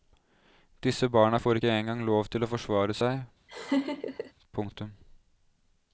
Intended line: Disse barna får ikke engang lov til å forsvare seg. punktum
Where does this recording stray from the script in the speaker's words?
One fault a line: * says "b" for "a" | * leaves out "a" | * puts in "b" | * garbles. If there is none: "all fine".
all fine